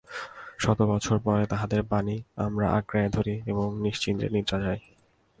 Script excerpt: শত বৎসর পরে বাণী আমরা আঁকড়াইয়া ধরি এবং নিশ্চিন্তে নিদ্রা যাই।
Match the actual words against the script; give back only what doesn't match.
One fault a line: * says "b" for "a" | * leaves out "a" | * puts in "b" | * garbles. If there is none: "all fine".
* puts in "তাঁহাদের"